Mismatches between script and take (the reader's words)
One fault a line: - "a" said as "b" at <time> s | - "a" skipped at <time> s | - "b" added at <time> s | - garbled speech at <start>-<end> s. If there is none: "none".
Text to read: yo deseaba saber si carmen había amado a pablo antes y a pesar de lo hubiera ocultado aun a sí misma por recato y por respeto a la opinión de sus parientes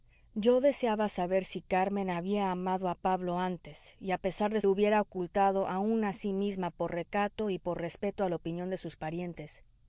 none